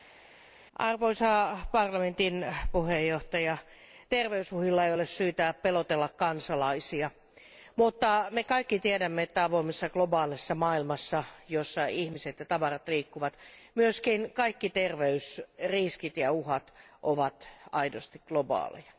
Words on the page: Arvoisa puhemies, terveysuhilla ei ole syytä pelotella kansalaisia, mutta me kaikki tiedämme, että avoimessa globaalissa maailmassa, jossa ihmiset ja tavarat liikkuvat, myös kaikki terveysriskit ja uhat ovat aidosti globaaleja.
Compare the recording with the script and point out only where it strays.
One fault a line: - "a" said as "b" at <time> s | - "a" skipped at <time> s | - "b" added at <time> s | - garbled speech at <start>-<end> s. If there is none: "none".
none